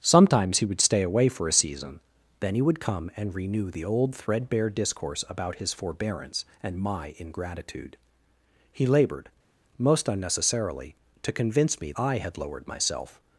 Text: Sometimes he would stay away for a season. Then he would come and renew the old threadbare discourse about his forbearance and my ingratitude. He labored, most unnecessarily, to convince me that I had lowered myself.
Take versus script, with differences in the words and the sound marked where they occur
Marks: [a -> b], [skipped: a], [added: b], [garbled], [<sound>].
Sometimes he would stay away for a season. Then he would come and renew the old threadbare discourse about his forbearance and my ingratitude. He labored, most unnecessarily, to convince me [skipped: that] I had lowered myself.